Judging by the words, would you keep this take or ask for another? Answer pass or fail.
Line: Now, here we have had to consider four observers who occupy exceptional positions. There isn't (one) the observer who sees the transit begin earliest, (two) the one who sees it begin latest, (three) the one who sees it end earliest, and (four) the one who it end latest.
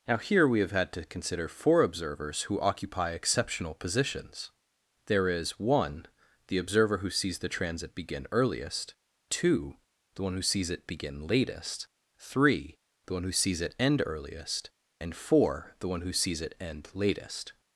fail